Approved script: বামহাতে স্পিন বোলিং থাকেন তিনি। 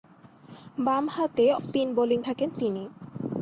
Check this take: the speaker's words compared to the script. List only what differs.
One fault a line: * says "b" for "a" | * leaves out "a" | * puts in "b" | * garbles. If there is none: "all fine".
all fine